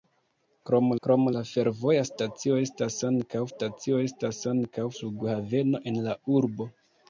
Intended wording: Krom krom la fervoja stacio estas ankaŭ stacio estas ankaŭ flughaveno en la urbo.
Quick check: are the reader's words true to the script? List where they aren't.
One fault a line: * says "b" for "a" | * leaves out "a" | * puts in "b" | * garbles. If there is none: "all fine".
all fine